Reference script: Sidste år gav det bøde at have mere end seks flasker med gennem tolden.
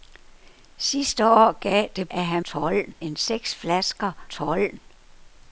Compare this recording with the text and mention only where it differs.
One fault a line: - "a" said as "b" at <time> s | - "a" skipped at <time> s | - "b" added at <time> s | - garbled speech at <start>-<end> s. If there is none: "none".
- "bøde" skipped at 2.1 s
- "mere" said as "tolden" at 2.4 s
- "med gennem" skipped at 4.1 s